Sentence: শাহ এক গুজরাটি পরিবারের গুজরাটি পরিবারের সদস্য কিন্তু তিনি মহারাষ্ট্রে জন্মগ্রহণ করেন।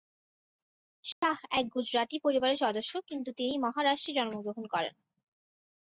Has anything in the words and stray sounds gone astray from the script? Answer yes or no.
yes